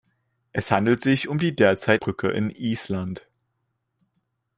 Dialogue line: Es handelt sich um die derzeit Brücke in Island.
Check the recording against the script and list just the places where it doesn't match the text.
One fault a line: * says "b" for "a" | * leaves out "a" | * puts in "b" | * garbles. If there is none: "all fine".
all fine